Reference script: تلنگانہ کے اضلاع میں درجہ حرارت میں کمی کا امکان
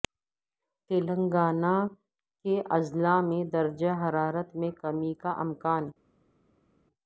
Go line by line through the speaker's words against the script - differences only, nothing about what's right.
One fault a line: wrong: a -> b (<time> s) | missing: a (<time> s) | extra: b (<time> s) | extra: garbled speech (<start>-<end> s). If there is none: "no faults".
no faults